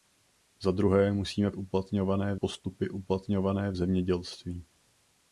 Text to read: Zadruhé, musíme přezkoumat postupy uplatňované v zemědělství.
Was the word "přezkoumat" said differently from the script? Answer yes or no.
yes